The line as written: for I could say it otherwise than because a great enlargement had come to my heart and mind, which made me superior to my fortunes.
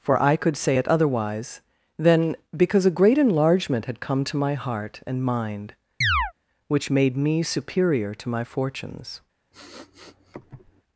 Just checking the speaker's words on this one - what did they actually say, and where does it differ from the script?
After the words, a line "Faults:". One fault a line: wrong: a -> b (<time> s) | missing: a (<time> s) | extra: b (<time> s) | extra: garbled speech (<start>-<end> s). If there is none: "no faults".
for I could say it otherwise than because a great enlargement had come to my heart and mind, which made me superior to my fortunes.
Faults:
no faults